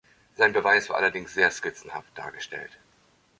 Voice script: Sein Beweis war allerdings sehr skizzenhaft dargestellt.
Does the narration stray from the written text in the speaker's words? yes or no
no